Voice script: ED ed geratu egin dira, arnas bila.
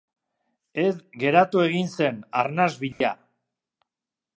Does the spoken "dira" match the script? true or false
false